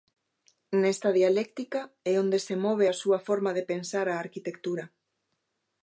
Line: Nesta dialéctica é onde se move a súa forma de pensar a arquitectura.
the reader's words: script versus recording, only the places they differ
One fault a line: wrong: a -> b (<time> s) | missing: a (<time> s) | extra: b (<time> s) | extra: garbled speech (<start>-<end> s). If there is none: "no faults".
no faults